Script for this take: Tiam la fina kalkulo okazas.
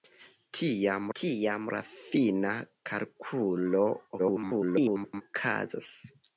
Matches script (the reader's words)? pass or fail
fail